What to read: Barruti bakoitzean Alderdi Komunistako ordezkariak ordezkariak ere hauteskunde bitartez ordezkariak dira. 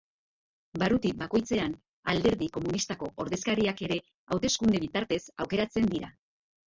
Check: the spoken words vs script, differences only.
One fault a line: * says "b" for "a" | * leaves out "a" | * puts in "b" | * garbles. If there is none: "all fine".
* leaves out "ordezkariak"
* says "aukeratzen" for "ordezkariak"